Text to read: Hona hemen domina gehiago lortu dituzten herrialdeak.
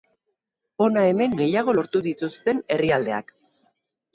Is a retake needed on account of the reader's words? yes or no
yes